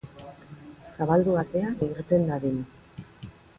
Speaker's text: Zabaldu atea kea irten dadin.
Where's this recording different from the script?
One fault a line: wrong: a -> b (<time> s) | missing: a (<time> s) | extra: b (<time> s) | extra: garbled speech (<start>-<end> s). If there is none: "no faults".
missing: kea (1.7 s)